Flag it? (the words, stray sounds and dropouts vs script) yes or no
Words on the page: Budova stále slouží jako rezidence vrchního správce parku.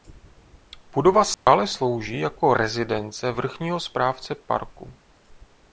yes